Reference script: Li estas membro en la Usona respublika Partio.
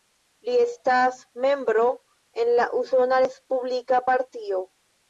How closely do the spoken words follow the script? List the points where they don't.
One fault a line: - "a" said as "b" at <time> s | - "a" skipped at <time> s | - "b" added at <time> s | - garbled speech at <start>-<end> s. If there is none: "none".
none